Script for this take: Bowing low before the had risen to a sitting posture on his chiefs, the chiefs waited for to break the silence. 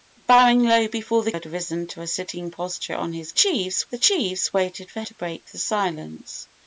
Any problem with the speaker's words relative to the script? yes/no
no